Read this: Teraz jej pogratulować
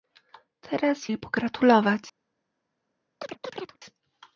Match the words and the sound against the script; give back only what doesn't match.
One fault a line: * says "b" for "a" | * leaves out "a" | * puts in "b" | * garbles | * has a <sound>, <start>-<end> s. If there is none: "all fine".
* has a chirp, 3.2-3.8 s